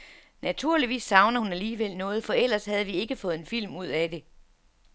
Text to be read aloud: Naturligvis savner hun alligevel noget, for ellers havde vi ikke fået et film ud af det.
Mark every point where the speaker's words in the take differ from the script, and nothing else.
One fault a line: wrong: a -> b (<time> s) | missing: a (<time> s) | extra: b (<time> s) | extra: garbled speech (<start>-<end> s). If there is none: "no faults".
wrong: et -> en (3.3 s)